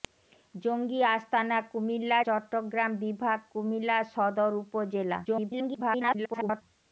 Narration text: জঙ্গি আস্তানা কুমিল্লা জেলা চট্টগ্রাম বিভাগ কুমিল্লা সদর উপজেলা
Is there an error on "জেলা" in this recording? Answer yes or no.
yes